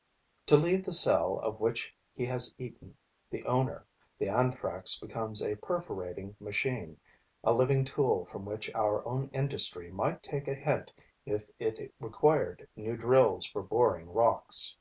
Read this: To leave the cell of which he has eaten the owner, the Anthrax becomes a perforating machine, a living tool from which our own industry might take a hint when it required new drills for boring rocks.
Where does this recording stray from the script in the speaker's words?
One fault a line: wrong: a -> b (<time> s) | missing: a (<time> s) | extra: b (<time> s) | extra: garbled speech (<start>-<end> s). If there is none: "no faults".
wrong: when -> if (11.2 s)